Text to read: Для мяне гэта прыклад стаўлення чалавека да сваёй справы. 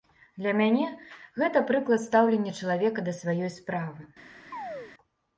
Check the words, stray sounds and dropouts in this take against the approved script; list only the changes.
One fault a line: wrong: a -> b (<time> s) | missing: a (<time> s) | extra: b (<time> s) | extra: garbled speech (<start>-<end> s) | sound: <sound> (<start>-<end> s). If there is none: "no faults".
sound: chirp (4.5-4.9 s)